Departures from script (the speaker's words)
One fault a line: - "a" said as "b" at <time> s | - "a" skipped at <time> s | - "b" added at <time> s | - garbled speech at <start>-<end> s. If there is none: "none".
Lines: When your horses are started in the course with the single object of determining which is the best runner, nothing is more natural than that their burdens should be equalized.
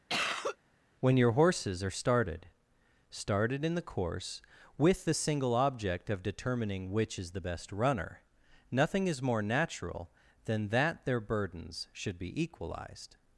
- "started" added at 3.1 s